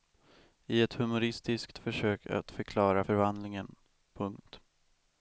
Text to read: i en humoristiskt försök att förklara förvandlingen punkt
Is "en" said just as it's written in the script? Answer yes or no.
no